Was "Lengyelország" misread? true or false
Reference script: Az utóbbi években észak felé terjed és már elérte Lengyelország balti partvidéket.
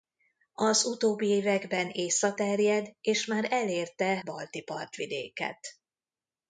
true